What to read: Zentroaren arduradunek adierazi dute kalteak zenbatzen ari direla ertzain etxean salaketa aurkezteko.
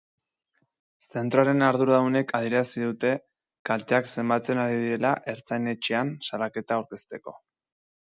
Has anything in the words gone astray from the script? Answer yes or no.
no